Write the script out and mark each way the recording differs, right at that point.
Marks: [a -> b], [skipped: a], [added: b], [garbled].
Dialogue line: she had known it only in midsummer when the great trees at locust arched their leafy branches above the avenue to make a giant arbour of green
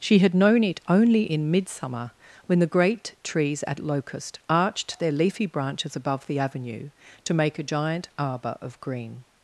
she had known it only in midsummer when the great trees at locust arched their leafy branches above the avenue to make a giant arbour of green